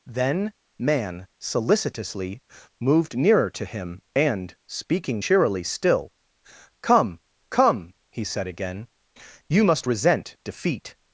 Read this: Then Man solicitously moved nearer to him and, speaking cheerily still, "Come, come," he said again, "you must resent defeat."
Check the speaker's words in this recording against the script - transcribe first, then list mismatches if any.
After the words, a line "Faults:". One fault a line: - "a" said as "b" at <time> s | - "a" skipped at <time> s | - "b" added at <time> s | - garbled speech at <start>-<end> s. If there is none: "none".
Then Man solicitously moved nearer to him and, speaking cheerily still, "Come, come," he said again, "you must resent defeat."
Faults:
none